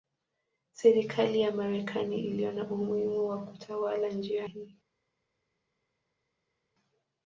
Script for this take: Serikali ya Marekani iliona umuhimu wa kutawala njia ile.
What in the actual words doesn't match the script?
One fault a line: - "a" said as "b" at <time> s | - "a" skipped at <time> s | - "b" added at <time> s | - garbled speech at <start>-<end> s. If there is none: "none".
- "ile" said as "hii" at 4.4 s